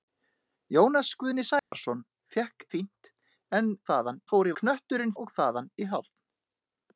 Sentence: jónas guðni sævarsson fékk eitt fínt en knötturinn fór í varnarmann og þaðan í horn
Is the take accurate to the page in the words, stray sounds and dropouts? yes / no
no